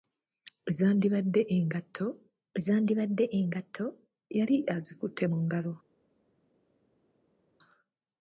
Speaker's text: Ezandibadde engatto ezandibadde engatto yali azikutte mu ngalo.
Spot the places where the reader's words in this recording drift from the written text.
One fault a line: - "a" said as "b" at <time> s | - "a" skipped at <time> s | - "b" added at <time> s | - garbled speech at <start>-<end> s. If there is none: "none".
none